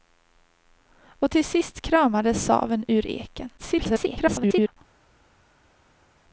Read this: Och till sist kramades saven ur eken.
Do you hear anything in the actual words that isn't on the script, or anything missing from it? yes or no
yes